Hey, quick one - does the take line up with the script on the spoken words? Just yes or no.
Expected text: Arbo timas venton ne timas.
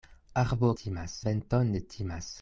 yes